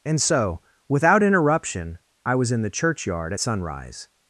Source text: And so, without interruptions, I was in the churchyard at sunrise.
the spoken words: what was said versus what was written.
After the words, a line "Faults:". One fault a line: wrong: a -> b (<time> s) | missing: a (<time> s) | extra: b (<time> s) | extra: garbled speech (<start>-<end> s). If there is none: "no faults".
And so, without interruption, I was in the churchyard at sunrise.
Faults:
wrong: interruptions -> interruption (1.2 s)